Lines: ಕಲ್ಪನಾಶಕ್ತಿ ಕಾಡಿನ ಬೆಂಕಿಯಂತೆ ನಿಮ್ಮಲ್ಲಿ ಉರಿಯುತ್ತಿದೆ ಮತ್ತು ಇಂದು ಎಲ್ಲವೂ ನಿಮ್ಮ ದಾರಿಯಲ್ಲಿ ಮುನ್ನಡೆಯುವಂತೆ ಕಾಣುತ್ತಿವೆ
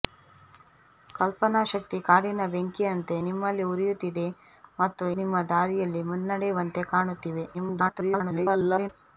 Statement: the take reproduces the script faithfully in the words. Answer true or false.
false